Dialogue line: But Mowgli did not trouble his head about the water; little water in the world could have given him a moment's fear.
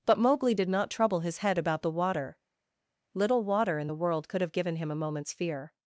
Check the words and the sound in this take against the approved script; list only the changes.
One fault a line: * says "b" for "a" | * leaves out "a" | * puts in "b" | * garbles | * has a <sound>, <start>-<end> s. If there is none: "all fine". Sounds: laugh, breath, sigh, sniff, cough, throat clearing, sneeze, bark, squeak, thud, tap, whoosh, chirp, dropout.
all fine